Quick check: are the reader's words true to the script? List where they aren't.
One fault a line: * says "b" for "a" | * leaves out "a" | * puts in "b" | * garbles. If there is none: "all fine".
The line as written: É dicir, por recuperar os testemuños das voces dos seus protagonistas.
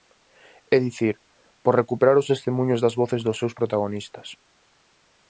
all fine